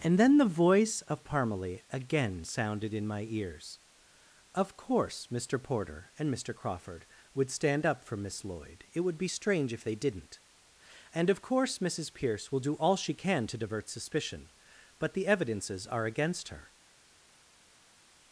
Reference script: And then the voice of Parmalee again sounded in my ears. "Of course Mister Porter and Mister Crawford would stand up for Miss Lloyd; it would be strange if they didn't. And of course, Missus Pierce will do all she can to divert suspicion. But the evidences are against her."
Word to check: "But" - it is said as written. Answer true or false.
true